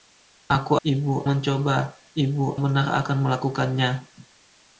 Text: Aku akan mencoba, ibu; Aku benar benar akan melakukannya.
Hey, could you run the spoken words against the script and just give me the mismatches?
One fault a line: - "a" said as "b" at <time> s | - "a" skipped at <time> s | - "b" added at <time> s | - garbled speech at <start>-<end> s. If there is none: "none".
- "akan" said as "ibu" at 0.8 s
- "Aku benar" skipped at 2.5 s